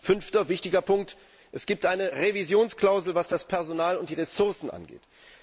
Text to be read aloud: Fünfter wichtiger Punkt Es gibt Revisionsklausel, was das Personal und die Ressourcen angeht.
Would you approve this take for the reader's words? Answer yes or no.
no